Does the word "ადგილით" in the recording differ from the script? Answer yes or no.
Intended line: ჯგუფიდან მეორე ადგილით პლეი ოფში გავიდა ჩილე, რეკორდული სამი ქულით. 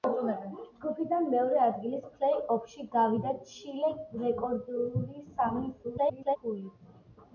no